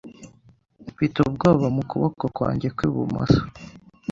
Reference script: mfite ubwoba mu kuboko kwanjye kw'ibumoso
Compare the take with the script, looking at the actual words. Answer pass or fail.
pass